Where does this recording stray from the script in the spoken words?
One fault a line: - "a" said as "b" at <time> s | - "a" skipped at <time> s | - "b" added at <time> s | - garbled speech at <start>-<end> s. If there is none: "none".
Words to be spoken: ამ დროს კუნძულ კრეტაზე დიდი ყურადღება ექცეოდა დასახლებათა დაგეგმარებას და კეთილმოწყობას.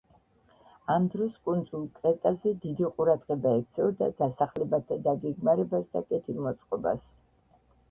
none